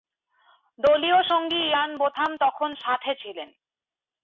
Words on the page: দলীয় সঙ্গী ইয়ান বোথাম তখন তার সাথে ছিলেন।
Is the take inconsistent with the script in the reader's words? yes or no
yes